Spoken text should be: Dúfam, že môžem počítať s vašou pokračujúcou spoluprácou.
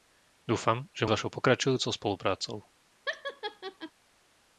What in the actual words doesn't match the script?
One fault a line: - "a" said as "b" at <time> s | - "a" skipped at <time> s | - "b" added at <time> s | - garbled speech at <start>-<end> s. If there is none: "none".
- "môžem počítať" skipped at 1.1 s